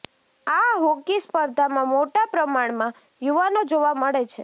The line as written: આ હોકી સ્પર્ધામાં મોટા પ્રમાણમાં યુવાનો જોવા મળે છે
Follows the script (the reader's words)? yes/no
yes